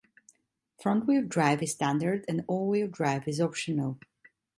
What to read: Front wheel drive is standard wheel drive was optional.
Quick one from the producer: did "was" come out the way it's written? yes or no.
no